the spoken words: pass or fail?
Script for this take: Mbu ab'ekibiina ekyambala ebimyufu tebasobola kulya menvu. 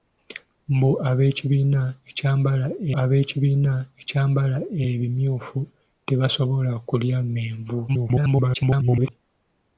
fail